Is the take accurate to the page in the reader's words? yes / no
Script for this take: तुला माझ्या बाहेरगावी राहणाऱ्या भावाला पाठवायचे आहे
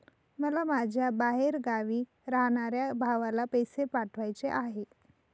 no